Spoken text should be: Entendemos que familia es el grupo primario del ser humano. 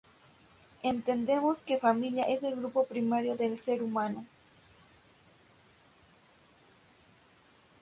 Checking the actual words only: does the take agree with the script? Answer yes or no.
yes